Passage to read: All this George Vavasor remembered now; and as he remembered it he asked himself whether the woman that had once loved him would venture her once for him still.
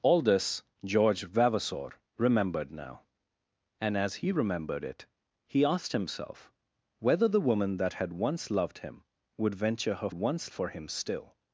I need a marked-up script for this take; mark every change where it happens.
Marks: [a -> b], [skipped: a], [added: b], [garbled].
All this George Vavasor remembered now; and as he remembered it he asked himself whether the woman that had once loved him would venture her once for him still.